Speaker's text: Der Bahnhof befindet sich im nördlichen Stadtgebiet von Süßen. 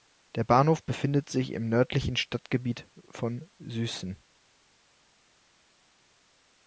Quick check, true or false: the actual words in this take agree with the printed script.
true